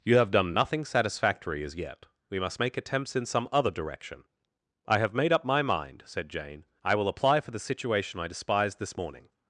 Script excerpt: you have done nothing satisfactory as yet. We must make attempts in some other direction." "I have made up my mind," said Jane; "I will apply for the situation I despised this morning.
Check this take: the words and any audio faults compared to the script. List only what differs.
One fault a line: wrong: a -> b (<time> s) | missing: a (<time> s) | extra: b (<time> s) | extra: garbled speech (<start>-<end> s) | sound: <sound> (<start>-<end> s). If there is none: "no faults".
no faults